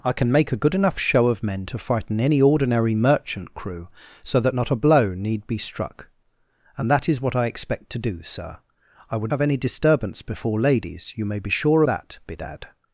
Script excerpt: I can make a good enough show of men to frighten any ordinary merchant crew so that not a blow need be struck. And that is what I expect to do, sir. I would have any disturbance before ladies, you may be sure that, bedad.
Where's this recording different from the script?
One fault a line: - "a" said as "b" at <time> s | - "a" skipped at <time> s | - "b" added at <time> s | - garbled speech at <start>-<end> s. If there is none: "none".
none